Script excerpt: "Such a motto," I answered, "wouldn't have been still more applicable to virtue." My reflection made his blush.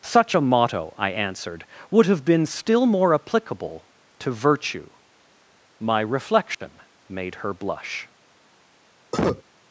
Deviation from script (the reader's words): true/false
true